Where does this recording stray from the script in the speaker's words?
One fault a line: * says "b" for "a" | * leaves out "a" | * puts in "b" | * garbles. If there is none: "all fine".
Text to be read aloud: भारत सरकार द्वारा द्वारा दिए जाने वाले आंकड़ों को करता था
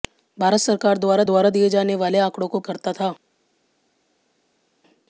all fine